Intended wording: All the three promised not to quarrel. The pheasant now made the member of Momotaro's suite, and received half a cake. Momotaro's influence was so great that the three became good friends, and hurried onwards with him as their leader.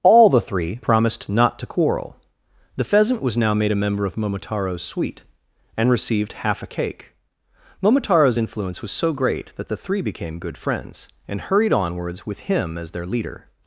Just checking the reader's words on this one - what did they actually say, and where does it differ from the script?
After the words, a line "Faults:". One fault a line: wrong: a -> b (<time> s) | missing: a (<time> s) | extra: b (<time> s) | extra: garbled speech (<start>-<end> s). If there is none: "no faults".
All the three promised not to quarrel. The pheasant was now made a member of Momotaro's suite, and received half a cake. Momotaro's influence was so great that the three became good friends, and hurried onwards with him as their leader.
Faults:
extra: was (3.2 s)
wrong: the -> a (3.7 s)